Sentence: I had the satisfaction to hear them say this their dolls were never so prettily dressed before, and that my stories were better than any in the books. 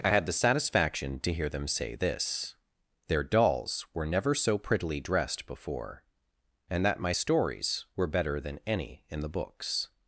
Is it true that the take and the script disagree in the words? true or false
false